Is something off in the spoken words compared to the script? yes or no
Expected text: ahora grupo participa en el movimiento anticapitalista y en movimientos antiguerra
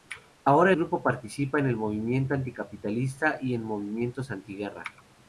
no